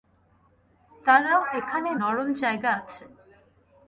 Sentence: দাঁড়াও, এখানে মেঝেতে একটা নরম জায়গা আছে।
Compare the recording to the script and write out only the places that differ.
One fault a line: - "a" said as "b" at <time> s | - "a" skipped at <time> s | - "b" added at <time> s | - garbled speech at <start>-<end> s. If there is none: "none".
- "মেঝেতে একটা" skipped at 1.9 s